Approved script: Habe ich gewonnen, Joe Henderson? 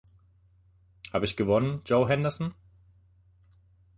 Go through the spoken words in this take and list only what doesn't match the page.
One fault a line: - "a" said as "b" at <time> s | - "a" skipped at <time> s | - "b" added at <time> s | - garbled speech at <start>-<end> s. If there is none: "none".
none